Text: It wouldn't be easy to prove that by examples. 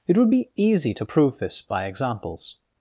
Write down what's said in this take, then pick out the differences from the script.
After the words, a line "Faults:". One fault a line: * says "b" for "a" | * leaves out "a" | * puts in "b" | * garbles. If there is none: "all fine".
It would be easy to prove this by examples.
Faults:
* says "would" for "wouldn't"
* says "this" for "that"